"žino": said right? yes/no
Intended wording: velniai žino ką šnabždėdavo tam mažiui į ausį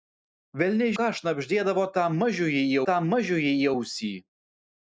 no